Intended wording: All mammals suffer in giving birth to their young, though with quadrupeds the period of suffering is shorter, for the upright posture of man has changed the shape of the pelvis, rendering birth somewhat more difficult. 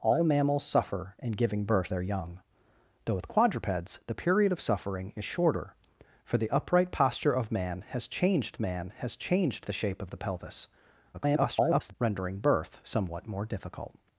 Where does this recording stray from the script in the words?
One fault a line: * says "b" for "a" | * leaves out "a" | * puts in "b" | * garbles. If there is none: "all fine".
* leaves out "to"
* puts in "man has changed"
* garbles